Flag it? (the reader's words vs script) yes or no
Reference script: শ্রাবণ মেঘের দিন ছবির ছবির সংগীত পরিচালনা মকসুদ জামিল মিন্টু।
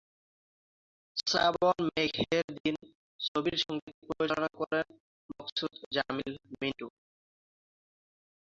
yes